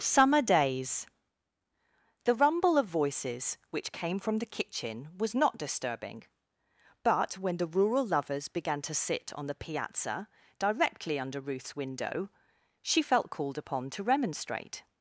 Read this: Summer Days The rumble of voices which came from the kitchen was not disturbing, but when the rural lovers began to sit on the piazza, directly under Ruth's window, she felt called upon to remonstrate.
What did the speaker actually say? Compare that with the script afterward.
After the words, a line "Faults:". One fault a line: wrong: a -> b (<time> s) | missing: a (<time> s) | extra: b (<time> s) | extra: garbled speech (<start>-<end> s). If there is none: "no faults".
Summer Days The rumble of voices which came from the kitchen was not disturbing, but when the rural lovers began to sit on the piazza, directly under Ruth's window, she felt called upon to remonstrate.
Faults:
no faults